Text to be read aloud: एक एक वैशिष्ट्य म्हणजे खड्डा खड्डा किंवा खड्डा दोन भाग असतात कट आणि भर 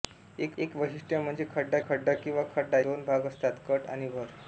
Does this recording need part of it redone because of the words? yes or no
no